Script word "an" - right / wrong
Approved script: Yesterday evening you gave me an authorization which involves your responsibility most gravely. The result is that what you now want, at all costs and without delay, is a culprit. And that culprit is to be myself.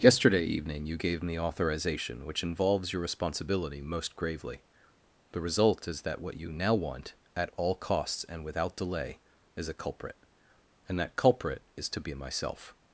wrong